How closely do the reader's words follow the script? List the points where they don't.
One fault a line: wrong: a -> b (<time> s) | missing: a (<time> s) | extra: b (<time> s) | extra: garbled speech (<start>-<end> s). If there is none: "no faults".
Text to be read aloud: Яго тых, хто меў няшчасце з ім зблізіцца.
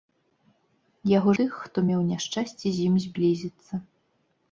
no faults